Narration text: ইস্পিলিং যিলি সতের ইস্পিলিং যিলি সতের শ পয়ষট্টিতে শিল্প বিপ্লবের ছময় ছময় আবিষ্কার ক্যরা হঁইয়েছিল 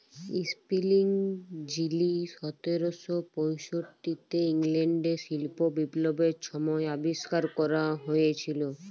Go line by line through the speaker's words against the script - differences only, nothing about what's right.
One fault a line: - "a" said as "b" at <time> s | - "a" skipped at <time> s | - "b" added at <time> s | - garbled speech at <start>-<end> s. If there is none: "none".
- "ইস্পিলিং যিলি সতের" skipped at 2.8 s
- "ইংল্যাল্ডে" added at 4.5 s
- "ছময়" skipped at 6.8 s